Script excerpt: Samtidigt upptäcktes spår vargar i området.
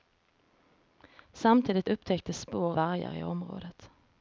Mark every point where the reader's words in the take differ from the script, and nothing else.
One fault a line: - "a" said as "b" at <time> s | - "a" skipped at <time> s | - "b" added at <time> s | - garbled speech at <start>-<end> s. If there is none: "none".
none